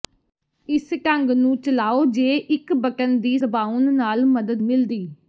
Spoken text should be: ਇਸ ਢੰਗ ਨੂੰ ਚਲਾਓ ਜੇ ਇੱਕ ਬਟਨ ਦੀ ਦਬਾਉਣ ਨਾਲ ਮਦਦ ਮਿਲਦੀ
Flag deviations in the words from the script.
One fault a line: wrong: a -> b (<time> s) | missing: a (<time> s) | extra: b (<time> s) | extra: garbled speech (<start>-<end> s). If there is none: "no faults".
no faults